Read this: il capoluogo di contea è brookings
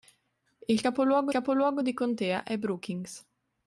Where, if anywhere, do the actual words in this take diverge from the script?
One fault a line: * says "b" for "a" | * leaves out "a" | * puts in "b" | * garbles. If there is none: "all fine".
* puts in "capoluogo"